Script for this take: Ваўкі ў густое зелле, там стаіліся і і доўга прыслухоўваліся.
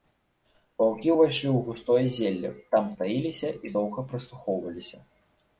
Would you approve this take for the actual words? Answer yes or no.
no